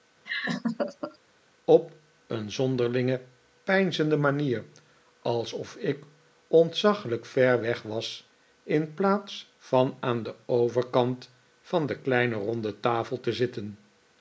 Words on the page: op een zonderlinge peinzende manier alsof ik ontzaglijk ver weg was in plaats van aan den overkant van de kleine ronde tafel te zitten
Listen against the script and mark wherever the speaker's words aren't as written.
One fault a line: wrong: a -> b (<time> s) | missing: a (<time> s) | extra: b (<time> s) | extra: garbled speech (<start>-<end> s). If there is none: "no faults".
no faults